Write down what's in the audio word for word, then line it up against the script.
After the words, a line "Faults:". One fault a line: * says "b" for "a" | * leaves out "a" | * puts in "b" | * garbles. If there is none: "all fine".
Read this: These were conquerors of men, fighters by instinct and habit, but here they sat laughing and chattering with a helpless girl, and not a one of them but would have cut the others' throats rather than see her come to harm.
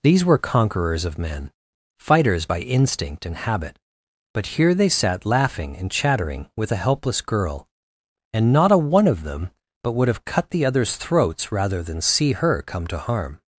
These were conquerors of men, fighters by instinct and habit, but here they sat laughing and chattering with a helpless girl, and not a one of them but would have cut the others' throats rather than see her come to harm.
Faults:
all fine